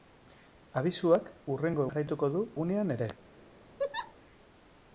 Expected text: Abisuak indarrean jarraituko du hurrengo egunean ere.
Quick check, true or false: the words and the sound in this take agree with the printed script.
false